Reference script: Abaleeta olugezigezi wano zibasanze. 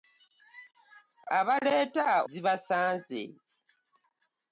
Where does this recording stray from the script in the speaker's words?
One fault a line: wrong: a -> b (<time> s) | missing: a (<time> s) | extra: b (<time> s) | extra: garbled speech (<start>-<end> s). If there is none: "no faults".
missing: olugezigezi wano (2.1 s)